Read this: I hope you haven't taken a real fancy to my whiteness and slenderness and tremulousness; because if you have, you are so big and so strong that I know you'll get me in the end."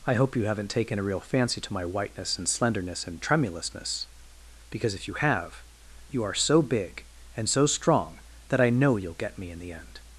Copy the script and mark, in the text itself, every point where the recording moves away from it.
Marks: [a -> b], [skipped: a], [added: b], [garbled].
I hope you haven't taken a real fancy to my whiteness and slenderness and tremulousness; because if you have, you are so big and so strong that I know you'll get me in the end."